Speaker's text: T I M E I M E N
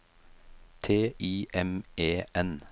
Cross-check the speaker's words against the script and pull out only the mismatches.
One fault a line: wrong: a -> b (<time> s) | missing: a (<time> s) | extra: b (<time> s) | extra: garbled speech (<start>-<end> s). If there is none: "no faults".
missing: I M E (2.2 s)